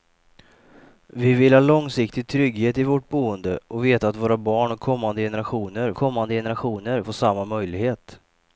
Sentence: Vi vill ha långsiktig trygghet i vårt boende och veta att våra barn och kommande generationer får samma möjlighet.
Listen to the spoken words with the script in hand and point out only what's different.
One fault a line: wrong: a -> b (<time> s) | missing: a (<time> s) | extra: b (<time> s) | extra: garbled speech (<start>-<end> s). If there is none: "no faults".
extra: kommande generationer (5.9 s)